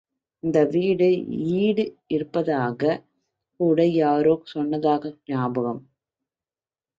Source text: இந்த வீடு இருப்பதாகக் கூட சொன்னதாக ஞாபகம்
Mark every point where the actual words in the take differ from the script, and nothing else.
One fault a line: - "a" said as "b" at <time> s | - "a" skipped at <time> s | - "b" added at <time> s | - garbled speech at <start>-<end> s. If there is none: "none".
- "ஈடு" added at 1.6 s
- "யாரோ" added at 4.0 s